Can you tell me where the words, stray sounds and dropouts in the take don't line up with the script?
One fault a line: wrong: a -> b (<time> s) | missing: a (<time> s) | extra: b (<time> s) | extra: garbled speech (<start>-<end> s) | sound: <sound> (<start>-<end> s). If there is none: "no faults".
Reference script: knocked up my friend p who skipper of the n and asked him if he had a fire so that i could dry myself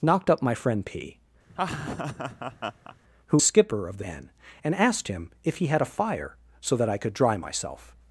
sound: laugh (1.5-3.0 s)